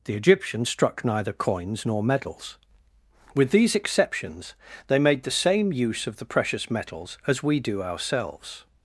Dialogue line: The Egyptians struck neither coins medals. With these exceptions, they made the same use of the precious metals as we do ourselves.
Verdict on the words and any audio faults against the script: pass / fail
fail